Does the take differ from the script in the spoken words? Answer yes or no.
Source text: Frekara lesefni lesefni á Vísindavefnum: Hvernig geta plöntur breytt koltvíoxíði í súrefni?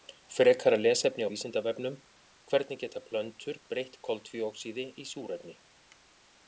yes